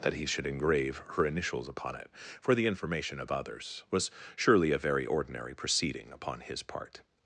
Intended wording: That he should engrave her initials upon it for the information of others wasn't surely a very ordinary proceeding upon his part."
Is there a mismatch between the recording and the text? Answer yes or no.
yes